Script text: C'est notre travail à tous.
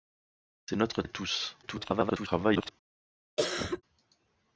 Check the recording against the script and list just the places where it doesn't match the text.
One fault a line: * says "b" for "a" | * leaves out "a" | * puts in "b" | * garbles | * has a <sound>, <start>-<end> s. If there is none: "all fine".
* leaves out "travail"
* garbles
* has a cough, 3.4-3.8 s